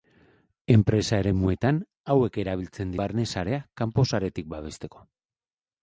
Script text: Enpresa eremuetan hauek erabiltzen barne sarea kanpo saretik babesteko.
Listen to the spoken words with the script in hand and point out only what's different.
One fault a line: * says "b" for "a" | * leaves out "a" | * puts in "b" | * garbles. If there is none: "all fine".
all fine